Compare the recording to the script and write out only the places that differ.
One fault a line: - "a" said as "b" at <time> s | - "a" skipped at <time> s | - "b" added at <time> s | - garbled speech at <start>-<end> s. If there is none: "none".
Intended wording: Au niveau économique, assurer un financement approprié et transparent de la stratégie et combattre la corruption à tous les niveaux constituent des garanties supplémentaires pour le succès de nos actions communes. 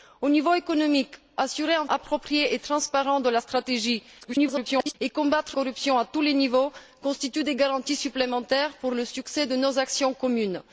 - "financement" skipped at 1.9 s
- garbled speech at 4.2-4.9 s
- "la" skipped at 5.6 s